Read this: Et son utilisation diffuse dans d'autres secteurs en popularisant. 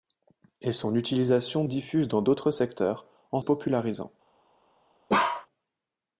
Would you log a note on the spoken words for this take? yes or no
no